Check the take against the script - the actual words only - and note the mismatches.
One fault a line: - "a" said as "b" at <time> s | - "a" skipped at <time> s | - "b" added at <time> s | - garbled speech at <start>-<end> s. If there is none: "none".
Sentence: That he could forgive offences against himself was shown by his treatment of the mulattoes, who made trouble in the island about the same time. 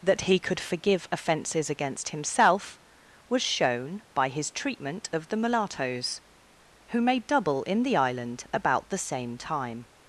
- "trouble" said as "double" at 7.3 s